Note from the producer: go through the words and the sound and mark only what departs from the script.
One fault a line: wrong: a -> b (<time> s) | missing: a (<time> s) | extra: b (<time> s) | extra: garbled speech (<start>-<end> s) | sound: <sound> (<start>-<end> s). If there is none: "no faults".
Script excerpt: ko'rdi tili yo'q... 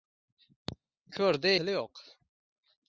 no faults